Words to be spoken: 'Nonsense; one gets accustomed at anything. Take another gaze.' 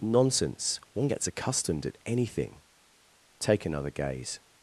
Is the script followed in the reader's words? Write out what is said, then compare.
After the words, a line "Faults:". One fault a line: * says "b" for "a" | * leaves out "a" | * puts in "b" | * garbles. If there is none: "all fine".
'Nonsense; one gets accustomed at anything. Take another gaze.'
Faults:
all fine